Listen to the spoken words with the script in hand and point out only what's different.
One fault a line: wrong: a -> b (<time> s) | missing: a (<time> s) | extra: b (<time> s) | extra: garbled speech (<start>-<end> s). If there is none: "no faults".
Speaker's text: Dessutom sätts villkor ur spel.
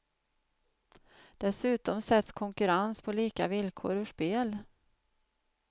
extra: konkurrens på lika (2.3 s)